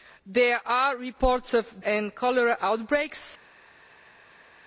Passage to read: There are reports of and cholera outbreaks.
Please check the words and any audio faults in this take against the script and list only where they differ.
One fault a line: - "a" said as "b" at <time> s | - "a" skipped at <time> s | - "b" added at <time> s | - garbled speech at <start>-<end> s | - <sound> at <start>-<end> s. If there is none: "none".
none